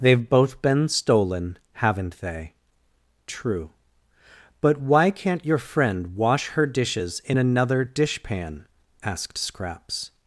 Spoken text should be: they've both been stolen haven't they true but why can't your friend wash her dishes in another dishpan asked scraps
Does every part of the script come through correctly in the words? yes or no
yes